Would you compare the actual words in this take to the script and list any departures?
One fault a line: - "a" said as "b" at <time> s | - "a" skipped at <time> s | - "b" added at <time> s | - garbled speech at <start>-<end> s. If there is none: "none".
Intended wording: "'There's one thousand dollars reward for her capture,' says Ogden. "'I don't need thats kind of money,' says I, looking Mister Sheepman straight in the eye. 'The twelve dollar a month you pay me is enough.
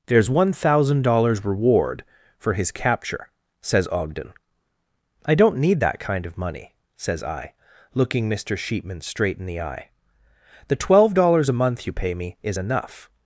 - "her" said as "his" at 2.5 s
- "thats" said as "that" at 5.8 s
- "dollar" said as "dollars" at 11.1 s